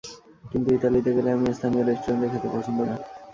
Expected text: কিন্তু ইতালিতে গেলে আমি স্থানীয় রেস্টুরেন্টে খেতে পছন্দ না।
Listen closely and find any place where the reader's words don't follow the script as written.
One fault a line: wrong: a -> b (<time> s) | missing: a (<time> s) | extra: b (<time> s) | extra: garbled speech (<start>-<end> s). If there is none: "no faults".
no faults